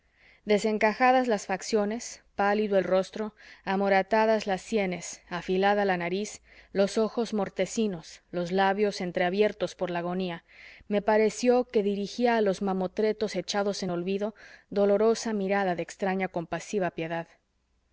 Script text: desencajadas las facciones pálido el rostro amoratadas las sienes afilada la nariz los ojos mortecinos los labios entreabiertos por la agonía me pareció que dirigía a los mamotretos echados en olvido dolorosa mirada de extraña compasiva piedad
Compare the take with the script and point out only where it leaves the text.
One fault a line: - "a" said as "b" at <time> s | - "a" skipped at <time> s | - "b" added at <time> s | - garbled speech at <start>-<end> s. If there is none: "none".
none